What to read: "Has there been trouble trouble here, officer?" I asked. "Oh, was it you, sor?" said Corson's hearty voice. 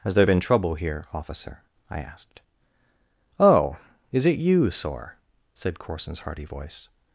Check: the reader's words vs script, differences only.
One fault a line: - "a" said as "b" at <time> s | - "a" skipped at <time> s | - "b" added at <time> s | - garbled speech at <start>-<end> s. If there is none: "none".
- "trouble" skipped at 0.7 s
- "was" said as "is" at 4.1 s